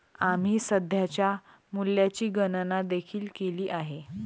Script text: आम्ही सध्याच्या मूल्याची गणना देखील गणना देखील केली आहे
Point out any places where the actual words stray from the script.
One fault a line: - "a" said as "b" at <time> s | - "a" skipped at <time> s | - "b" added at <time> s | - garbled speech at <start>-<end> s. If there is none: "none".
- "गणना देखील" skipped at 3.3 s